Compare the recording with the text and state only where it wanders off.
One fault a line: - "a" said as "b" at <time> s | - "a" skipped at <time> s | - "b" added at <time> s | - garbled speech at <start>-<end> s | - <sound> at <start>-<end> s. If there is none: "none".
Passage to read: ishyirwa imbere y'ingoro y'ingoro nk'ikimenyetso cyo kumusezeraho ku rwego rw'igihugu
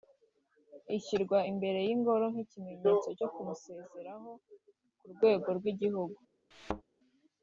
- "y'ingoro" skipped at 2.2 s
- thud at 6.5-6.8 s